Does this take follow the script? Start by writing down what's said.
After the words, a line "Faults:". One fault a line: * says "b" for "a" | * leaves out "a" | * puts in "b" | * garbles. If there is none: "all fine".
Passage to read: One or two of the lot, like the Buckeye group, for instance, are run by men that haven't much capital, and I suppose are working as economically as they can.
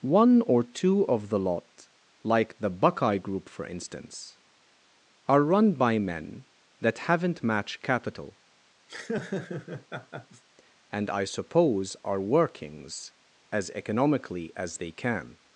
One or two of the lot, like the Buckeye group, for instance, are run by men that haven't match capital, and I suppose are workings as economically as they can.
Faults:
* says "match" for "much"
* says "workings" for "working"